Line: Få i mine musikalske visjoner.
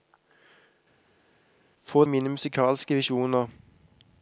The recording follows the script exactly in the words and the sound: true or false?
true